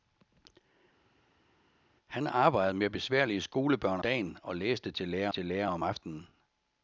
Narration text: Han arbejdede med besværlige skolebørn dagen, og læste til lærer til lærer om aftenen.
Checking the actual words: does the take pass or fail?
pass